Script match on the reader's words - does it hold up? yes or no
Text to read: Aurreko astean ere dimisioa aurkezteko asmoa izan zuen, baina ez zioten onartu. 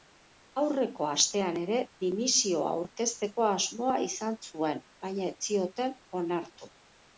yes